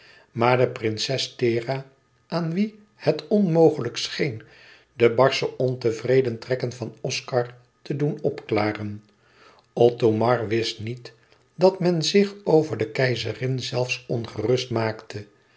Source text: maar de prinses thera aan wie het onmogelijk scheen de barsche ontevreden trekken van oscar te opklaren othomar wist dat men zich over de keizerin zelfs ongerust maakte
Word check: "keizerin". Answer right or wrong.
right